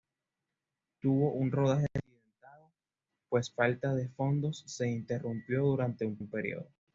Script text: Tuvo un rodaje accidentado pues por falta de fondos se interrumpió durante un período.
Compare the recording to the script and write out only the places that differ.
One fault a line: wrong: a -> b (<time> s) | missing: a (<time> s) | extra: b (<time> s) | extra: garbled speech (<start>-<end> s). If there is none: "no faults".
missing: por (3.5 s)
extra: un (6.2 s)